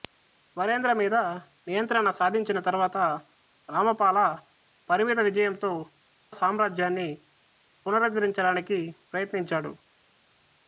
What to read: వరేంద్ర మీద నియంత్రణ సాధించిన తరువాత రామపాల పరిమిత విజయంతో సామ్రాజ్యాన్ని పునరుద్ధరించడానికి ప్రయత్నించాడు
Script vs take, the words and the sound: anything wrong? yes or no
no